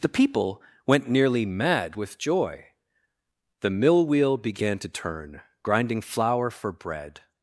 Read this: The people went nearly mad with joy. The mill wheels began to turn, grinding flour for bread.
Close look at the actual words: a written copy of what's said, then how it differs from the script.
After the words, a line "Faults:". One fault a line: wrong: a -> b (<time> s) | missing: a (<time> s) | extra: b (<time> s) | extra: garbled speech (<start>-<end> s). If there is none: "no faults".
The people went nearly mad with joy. The mill wheel began to turn, grinding flour for bread.
Faults:
wrong: wheels -> wheel (4.1 s)